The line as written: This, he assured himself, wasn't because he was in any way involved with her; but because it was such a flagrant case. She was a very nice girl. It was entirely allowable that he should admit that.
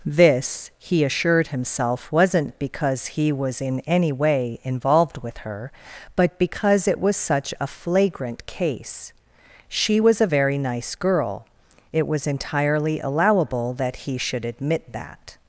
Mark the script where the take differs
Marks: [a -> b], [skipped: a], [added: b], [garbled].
This, he assured himself, wasn't because he was in any way involved with her; but because it was such a flagrant case. She was a very nice girl. It was entirely allowable that he should admit that.